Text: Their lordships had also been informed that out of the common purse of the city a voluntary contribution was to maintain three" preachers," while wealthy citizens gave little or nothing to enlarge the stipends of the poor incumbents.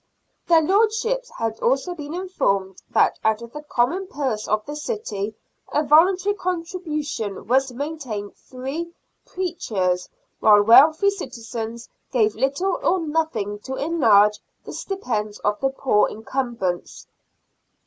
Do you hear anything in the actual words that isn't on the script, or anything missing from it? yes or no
no